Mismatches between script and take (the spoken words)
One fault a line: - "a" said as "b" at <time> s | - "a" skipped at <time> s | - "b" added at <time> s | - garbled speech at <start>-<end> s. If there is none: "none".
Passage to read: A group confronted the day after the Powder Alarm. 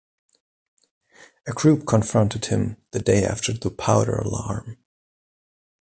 - "him" added at 2.5 s